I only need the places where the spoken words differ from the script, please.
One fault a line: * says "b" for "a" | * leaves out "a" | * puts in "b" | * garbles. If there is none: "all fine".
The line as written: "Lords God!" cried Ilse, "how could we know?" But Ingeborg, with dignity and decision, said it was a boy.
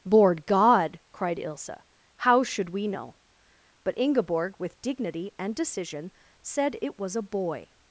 * says "Lord" for "Lords"
* says "should" for "could"